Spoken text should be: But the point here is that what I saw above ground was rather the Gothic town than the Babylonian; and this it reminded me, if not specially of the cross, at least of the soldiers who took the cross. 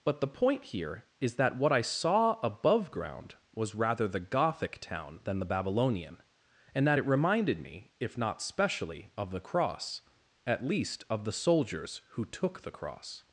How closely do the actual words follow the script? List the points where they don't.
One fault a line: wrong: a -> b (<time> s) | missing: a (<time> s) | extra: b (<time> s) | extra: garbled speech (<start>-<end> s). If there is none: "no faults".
wrong: this -> that (6.9 s)